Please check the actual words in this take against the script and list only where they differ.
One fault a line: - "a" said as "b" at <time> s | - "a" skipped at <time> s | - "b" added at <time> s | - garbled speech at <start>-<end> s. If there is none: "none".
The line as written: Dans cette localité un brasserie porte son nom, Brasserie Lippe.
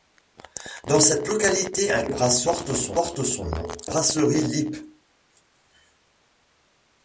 none